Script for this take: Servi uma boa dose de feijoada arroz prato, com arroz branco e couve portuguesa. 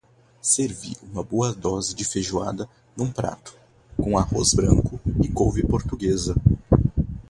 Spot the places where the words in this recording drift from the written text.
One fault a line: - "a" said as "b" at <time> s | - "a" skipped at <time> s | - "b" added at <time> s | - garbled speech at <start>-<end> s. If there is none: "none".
- "arroz" said as "num" at 3.0 s